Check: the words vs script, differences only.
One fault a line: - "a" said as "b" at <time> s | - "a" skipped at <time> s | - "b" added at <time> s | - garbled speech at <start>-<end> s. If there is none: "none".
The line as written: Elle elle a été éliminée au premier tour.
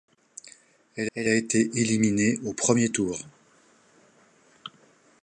none